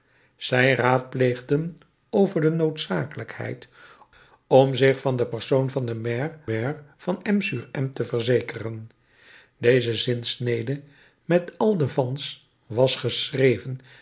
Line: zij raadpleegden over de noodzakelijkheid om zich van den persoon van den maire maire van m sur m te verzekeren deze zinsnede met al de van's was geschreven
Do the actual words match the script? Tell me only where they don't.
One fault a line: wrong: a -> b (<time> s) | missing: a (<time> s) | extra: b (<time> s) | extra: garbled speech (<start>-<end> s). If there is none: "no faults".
no faults